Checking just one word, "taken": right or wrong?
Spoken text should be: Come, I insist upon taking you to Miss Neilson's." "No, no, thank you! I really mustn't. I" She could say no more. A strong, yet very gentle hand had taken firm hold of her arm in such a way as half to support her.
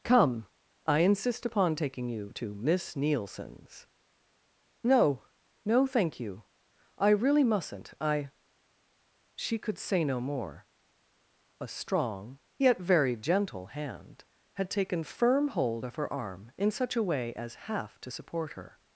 right